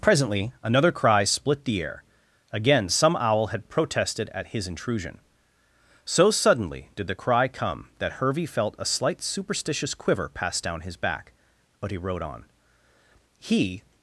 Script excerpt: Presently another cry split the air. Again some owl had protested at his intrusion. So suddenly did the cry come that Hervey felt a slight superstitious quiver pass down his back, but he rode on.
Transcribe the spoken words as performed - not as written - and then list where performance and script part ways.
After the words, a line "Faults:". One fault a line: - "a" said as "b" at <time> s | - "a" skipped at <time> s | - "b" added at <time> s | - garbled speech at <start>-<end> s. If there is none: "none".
Presently another cry split the air. Again some owl had protested at his intrusion. So suddenly did the cry come that Hervey felt a slight superstitious quiver pass down his back, but he rode on. He
Faults:
- "He" added at 13.4 s